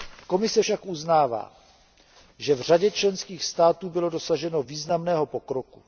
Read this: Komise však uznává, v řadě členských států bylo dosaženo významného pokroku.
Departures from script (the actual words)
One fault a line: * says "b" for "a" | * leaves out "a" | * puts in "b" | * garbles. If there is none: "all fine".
* puts in "že"